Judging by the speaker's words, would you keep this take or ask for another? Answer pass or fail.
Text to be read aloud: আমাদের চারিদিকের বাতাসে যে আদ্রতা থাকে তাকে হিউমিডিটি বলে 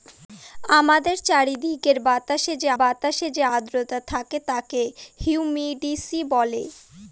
fail